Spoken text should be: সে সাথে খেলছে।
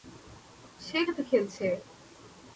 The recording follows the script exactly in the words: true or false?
true